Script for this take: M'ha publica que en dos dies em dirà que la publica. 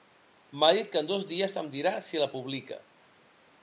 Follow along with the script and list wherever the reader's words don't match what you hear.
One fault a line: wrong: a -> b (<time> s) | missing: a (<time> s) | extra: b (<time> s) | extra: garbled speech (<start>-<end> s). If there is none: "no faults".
wrong: publica -> dit (0.8 s)
wrong: que -> si (2.1 s)